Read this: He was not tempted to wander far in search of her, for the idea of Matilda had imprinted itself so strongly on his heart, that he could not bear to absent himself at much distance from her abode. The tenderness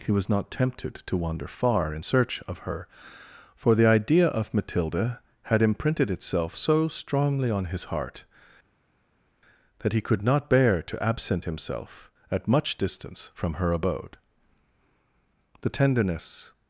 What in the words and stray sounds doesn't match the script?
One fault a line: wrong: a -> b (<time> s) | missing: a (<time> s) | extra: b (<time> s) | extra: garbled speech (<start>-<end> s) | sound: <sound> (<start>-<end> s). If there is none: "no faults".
no faults